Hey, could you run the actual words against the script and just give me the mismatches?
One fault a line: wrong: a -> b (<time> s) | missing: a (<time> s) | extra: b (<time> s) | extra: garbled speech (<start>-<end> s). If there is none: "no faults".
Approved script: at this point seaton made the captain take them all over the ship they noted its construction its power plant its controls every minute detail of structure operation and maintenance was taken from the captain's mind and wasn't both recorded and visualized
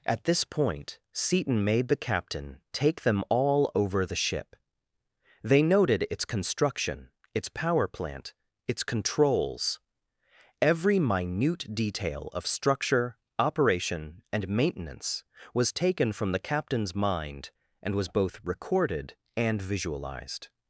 wrong: wasn't -> was (17.9 s)